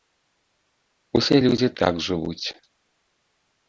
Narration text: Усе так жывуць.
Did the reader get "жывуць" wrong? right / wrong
right